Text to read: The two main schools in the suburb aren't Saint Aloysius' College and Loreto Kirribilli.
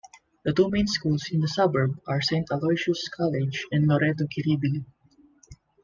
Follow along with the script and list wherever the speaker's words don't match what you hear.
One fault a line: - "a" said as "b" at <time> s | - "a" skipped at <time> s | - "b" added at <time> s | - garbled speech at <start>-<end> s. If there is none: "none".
- "aren't" said as "are" at 2.1 s